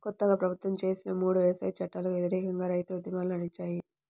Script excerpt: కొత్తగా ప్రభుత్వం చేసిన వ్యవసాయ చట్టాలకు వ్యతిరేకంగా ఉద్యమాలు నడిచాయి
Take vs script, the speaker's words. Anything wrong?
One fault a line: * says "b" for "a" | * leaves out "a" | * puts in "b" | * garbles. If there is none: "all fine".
* puts in "మూడు"
* puts in "రైతు"